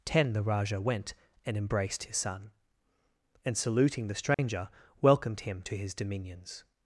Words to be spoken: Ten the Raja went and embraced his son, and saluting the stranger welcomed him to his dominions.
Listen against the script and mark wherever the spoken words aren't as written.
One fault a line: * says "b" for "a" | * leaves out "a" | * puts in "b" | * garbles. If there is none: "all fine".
all fine